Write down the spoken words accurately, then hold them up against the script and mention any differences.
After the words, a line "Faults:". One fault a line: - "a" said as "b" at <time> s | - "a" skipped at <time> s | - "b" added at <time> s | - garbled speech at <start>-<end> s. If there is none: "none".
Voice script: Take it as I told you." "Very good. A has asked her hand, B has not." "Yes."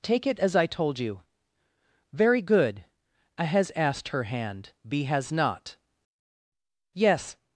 Take it as I told you." "Very good. A has asked her hand, B has not." "Yes."
Faults:
none